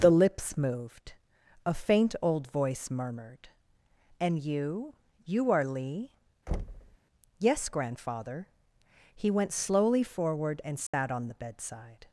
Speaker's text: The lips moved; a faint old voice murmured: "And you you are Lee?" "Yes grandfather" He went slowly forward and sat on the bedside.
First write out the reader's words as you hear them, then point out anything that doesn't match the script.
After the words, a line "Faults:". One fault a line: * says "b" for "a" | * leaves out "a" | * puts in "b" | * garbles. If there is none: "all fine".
The lips moved; a faint old voice murmured: "And you you are Lee?" "Yes grandfather" He went slowly forward and sat on the bedside.
Faults:
all fine